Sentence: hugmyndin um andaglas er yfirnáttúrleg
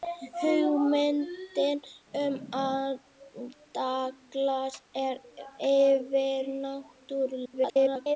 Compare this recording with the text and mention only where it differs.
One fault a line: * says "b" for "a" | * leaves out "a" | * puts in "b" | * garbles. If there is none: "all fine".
* garbles